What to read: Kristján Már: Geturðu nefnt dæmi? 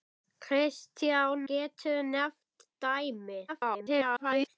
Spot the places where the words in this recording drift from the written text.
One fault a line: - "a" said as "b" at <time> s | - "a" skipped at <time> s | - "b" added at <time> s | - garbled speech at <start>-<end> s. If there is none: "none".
- "Már" skipped at 1.4 s
- garbled speech at 3.5-4.5 s